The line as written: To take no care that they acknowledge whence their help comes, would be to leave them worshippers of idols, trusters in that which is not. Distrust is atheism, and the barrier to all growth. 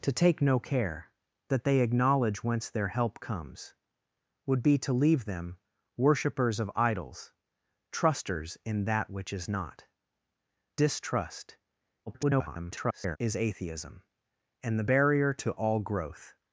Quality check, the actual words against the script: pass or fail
fail